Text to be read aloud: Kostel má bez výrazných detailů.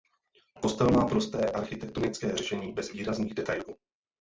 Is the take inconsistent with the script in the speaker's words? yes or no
yes